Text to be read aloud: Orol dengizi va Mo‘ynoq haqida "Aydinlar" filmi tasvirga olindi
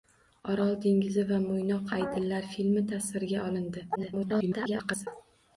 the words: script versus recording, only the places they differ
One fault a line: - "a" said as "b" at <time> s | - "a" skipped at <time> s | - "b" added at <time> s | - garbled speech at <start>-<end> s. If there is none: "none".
- "haqida" skipped at 1.9 s
- garbled speech at 3.9-5.1 s